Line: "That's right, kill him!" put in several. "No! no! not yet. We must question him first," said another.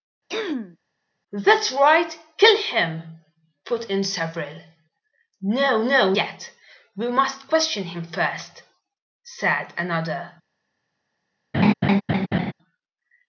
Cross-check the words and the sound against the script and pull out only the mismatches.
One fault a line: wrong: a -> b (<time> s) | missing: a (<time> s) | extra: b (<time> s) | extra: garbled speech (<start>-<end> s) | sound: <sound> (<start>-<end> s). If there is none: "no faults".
sound: throat clearing (0.3-0.8 s)
missing: not (6.1 s)
sound: laugh (11.5-12.5 s)